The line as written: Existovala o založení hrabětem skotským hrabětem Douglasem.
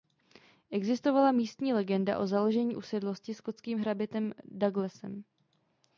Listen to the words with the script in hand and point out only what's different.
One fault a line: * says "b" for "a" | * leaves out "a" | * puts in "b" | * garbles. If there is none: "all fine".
* puts in "místní legenda"
* says "usedlosti" for "hrabětem"